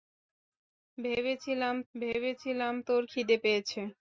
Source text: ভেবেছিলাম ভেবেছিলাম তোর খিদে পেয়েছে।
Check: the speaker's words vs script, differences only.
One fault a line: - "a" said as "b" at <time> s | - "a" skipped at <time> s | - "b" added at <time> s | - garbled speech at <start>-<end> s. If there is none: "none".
none